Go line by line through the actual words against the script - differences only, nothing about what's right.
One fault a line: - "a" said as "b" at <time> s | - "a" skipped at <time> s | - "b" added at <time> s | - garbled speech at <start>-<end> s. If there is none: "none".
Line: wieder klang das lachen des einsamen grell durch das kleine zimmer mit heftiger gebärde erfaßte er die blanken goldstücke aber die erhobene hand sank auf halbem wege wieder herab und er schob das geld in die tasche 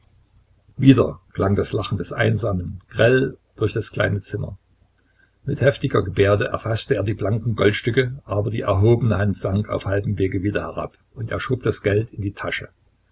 none